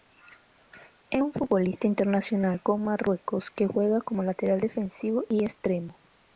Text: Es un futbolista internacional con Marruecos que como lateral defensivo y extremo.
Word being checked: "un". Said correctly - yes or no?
yes